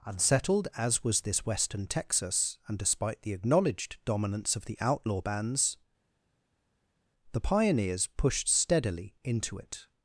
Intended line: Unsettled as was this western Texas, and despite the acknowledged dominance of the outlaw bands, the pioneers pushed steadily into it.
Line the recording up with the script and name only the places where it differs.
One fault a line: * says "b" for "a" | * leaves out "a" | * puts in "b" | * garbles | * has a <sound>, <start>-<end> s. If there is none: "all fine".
all fine